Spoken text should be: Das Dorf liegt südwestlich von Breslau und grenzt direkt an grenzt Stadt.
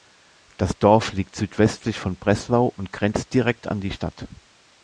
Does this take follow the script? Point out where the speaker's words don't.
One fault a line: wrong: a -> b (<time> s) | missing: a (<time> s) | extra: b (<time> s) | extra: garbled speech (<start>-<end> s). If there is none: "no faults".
wrong: grenzt -> die (3.8 s)